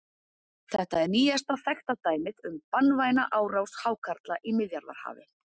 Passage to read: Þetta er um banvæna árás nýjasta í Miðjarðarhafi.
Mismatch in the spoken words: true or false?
true